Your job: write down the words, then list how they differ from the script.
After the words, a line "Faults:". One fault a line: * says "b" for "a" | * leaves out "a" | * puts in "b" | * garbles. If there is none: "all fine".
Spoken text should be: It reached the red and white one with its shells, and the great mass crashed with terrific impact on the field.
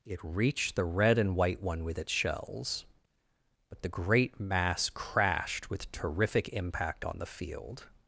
It reached the red and white one with its shells, but the great mass crashed with terrific impact on the field.
Faults:
* says "but" for "and"